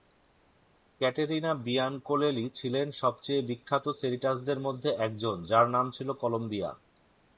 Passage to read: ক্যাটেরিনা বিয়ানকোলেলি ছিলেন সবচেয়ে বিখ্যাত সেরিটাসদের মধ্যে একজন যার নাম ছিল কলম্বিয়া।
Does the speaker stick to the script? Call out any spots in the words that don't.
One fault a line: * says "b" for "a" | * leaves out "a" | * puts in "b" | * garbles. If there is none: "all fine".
all fine